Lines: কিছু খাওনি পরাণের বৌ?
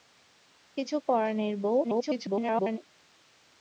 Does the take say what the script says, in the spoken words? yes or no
no